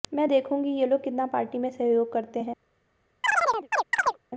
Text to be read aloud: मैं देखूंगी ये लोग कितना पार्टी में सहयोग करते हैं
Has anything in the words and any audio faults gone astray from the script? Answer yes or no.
yes